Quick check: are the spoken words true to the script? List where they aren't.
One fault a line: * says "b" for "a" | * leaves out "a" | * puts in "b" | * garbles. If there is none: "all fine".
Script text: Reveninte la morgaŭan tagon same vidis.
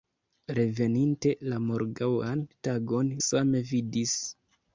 all fine